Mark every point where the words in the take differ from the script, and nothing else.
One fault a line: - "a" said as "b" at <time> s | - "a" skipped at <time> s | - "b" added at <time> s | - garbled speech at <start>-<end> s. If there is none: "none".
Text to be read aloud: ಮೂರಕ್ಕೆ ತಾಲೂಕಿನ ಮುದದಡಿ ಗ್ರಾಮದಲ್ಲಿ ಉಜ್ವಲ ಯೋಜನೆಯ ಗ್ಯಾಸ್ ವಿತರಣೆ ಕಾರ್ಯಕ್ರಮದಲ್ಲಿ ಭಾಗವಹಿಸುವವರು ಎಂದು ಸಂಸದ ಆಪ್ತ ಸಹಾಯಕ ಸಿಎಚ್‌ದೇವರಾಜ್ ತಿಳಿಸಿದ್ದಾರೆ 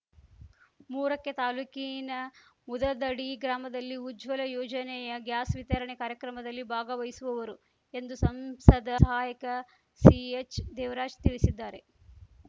- "ಆಪ್ತ" skipped at 8.9 s